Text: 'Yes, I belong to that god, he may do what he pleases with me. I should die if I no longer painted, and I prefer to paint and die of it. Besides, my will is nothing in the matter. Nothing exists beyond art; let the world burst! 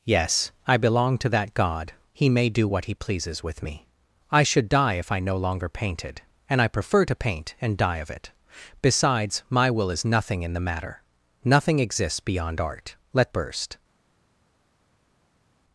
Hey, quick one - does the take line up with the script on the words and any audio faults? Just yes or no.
no